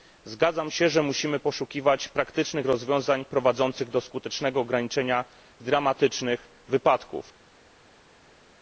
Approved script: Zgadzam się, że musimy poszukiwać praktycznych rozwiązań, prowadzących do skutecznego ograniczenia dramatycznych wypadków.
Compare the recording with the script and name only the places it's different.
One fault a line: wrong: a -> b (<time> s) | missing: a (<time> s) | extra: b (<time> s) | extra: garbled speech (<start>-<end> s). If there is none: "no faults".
no faults